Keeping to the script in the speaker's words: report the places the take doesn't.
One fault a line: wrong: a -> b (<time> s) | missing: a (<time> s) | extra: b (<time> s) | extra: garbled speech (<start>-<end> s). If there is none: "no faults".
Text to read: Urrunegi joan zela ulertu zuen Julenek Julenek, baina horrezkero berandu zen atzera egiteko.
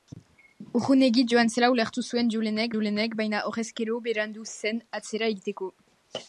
no faults